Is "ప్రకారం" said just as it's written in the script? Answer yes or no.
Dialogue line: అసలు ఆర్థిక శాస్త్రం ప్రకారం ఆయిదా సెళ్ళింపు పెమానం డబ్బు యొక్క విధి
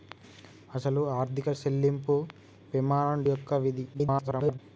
no